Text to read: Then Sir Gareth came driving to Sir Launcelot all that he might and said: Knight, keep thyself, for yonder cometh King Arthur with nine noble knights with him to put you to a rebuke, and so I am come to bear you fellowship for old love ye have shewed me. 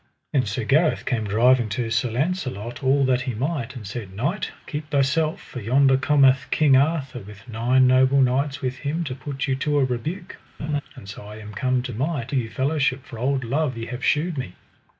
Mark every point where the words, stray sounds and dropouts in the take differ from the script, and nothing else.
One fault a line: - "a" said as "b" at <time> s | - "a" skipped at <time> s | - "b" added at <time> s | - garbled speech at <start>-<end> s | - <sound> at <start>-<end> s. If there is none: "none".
- laugh at 10.6-10.8 s
- "bear" said as "might" at 11.9 s